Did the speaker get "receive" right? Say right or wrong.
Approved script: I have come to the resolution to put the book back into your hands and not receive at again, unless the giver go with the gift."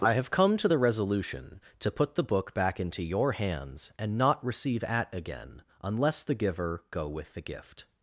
right